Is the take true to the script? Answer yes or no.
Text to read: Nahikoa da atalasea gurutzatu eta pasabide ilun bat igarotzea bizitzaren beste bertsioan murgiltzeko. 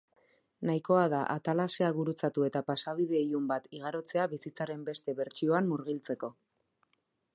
yes